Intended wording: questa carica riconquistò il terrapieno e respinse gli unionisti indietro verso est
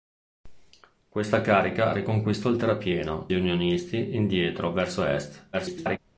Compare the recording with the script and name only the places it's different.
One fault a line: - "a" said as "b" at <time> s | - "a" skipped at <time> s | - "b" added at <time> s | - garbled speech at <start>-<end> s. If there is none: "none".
- "e respinse" skipped at 3.3 s
- garbled speech at 5.5-6.0 s